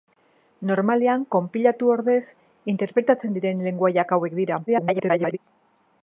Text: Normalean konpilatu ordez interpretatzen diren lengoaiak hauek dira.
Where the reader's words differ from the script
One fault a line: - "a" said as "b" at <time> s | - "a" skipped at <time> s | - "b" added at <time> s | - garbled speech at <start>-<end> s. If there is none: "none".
- garbled speech at 4.7-5.4 s